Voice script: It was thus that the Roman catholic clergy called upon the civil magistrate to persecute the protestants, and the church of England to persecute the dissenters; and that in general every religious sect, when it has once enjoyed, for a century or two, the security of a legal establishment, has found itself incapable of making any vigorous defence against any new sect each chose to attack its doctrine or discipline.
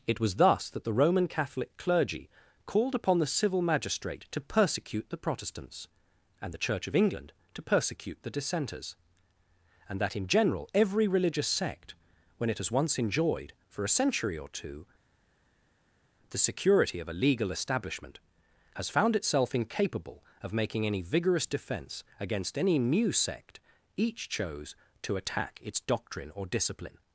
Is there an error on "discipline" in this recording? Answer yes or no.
no